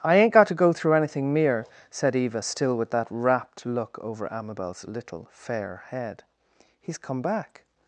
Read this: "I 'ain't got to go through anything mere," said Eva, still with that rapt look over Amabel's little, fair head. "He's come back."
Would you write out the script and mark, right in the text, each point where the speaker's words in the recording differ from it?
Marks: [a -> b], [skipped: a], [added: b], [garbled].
"I 'ain't got to go through anything mere," said Eva, still with that rapt look over Amabel's little, fair head. "He's come back."